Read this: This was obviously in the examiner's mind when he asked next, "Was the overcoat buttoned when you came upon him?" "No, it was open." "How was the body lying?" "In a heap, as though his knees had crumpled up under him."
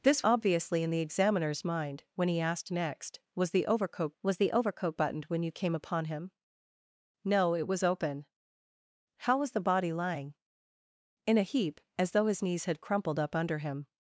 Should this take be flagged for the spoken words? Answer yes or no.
yes